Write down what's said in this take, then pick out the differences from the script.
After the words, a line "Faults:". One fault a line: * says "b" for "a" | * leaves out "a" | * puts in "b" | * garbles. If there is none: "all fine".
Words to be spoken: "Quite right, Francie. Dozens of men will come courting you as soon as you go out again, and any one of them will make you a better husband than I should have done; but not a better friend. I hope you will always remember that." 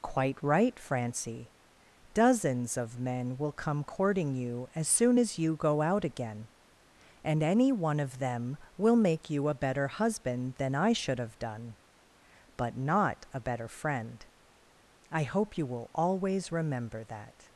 "Quite right, Francie. Dozens of men will come courting you as soon as you go out again, and any one of them will make you a better husband than I should have done; but not a better friend. I hope you will always remember that."
Faults:
all fine